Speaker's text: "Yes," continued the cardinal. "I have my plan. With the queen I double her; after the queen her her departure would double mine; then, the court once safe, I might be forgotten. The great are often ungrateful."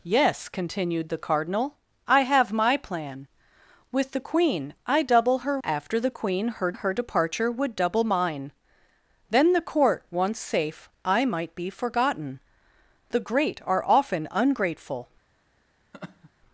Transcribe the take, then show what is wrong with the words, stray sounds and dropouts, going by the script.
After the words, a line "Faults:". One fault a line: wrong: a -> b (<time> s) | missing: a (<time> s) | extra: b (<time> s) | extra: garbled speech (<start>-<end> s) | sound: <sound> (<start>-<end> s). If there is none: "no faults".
"Yes," continued the cardinal. "I have my plan. With the queen I double her; after the queen her her departure would double mine; then, the court once safe, I might be forgotten. The great are often ungrateful."
Faults:
sound: laugh (15.9-16.3 s)